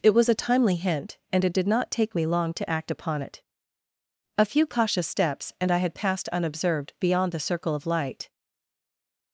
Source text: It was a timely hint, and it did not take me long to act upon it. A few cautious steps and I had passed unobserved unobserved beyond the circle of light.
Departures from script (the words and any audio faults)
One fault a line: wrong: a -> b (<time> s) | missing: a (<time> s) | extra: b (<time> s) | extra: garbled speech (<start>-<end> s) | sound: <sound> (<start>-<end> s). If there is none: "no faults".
missing: unobserved (6.9 s)